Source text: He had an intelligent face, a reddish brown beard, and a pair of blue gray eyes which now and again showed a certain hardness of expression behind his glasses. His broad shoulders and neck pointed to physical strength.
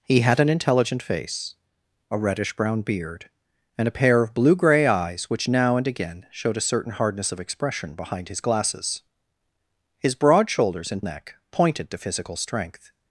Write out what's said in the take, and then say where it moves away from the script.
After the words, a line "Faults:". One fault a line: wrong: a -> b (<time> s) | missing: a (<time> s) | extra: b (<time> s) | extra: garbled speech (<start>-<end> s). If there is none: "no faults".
He had an intelligent face, a reddish brown beard, and a pair of blue gray eyes which now and again showed a certain hardness of expression behind his glasses. His broad shoulders and neck pointed to physical strength.
Faults:
no faults